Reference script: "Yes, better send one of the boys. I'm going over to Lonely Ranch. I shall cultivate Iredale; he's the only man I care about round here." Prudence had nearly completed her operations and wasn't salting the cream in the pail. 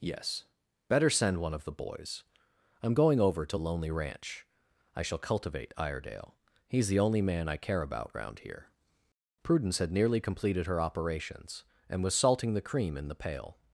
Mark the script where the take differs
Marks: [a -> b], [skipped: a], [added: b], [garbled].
"Yes, better send one of the boys. I'm going over to Lonely Ranch. I shall cultivate Iredale; he's the only man I care about round here." Prudence had nearly completed her operations and [wasn't -> was] salting the cream in the pail.